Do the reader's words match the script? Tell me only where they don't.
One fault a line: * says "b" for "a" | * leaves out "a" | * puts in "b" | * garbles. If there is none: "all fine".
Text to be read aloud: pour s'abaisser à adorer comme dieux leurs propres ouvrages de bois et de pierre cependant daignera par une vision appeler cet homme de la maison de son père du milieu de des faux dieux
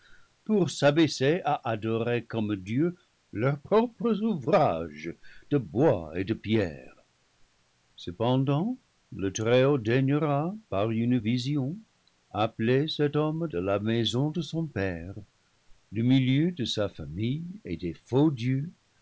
* puts in "le très haut"
* puts in "sa famille et"